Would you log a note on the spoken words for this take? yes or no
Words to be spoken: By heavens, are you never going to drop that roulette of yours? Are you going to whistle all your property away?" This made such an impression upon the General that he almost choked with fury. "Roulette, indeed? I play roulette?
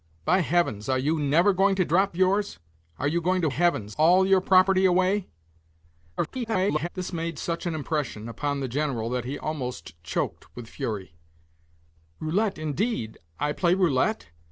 yes